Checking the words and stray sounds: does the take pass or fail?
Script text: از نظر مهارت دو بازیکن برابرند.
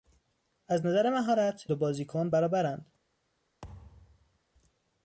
fail